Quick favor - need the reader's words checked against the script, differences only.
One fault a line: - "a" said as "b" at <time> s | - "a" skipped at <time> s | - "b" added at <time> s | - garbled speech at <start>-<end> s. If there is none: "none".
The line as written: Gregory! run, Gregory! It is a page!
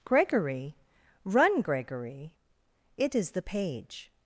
- "a" said as "the" at 3.3 s